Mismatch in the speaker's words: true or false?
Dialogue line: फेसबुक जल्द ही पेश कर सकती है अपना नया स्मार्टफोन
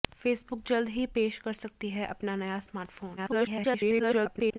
true